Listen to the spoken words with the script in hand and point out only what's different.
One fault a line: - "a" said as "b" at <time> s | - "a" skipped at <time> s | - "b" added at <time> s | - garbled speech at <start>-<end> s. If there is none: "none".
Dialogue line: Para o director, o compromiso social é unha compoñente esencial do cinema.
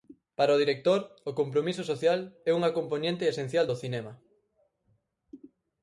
none